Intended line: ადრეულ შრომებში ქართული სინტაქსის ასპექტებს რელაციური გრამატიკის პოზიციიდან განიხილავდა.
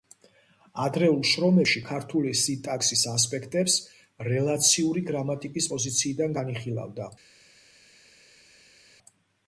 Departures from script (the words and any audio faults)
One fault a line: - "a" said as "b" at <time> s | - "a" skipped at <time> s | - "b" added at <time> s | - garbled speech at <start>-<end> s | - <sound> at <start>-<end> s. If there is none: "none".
none